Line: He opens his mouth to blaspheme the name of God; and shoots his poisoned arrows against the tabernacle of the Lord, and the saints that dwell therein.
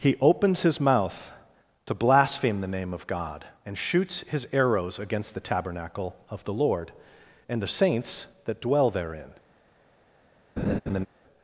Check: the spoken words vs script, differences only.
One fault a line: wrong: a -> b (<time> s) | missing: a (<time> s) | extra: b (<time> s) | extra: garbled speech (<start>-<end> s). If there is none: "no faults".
missing: poisoned (4.5 s)